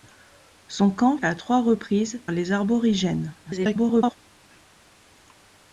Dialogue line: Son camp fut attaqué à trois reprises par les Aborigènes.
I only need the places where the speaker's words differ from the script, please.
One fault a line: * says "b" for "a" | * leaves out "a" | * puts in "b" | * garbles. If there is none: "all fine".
* leaves out "fut attaqué"
* leaves out "par"
* garbles